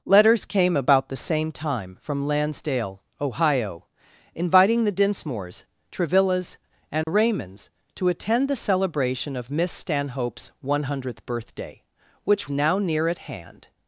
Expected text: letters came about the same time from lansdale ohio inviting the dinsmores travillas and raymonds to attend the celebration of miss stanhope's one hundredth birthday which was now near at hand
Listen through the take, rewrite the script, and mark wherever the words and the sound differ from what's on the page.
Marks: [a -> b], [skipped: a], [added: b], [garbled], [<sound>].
letters came about the same time from lansdale ohio inviting the dinsmores travillas and [dropout] raymonds to attend the celebration of miss stanhope's one hundredth birthday which [skipped: was] now near at hand